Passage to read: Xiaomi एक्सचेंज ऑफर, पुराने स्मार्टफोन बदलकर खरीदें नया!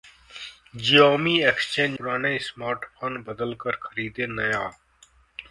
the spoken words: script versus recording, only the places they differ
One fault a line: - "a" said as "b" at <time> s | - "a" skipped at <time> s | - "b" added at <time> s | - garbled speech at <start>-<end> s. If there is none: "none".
- "ऑफर" skipped at 2.0 s